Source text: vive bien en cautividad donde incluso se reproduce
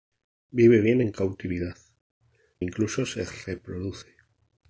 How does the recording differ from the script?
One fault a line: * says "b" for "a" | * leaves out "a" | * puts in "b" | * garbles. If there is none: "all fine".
* leaves out "donde"